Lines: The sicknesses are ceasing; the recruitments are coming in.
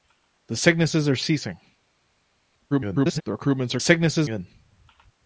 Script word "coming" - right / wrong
wrong